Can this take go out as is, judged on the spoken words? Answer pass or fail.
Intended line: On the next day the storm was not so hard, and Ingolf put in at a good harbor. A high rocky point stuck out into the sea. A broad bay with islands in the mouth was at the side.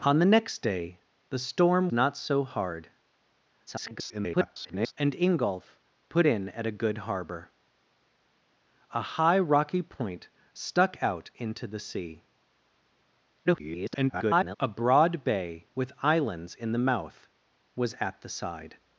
fail